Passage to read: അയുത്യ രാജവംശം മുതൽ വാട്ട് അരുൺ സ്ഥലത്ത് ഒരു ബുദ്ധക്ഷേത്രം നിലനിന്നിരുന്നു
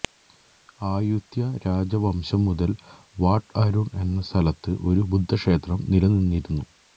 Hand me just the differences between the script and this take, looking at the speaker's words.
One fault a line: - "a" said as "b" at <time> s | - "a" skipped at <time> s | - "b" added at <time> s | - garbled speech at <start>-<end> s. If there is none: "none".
- "എന്ന" added at 4.0 s